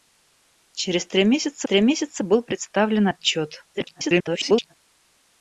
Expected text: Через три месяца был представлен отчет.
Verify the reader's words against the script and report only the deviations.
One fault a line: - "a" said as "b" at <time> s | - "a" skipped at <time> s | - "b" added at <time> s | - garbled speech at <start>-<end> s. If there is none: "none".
- "три месяца" added at 1.6 s
- garbled speech at 3.7-4.7 s